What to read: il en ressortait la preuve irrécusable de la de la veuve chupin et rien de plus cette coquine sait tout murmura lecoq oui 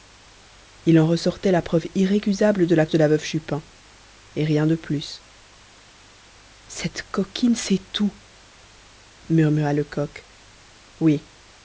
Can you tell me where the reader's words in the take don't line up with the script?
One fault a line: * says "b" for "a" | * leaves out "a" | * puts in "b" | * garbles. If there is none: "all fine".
all fine